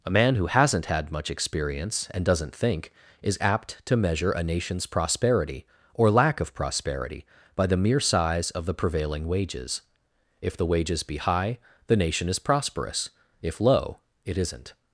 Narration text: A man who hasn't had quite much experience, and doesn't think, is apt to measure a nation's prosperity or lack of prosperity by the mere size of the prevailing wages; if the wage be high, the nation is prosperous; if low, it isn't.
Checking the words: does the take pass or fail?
fail